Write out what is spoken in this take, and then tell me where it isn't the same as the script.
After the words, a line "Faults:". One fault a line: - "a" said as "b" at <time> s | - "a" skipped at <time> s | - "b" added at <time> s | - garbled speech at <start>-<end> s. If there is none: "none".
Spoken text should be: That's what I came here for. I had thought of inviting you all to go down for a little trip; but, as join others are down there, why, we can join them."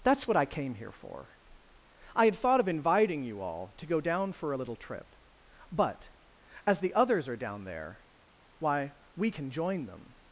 That's what I came here for. I had thought of inviting you all to go down for a little trip; but, as the others are down there, why, we can join them."
Faults:
- "join" said as "the" at 6.8 s